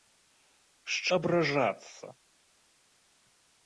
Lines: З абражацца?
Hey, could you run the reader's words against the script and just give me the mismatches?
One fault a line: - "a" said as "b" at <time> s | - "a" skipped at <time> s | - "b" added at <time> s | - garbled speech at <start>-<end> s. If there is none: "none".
none